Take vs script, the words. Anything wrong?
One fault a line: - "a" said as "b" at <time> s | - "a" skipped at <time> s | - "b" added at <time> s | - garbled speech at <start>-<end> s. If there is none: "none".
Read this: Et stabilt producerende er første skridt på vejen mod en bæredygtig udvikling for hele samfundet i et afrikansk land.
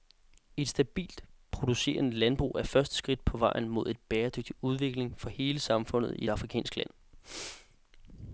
- "landbrug" added at 2.1 s